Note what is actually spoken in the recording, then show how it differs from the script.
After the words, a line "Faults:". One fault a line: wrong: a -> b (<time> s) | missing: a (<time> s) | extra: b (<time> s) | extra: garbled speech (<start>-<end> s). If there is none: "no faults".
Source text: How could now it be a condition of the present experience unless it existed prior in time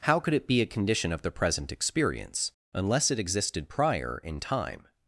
How could it be a condition of the present experience unless it existed prior in time
Faults:
missing: now (0.3 s)